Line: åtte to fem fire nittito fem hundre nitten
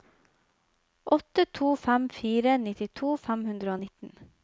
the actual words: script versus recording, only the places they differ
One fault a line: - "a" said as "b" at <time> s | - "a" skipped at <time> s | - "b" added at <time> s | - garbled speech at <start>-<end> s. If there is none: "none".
- "og" added at 3.8 s